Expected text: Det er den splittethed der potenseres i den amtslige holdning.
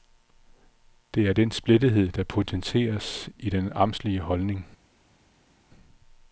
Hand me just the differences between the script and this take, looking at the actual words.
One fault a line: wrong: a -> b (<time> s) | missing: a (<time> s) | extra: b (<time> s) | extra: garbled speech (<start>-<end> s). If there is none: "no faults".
no faults